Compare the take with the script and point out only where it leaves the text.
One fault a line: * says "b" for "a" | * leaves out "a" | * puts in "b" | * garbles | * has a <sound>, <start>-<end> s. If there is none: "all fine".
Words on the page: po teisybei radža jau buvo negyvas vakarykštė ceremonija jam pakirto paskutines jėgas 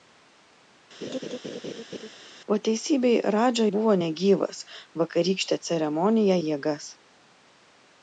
* has a laugh, 1.0-2.1 s
* leaves out "jau"
* leaves out "jam pakirto paskutines"